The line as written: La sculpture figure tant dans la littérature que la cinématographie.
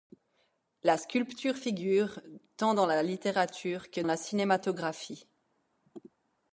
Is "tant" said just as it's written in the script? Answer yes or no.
yes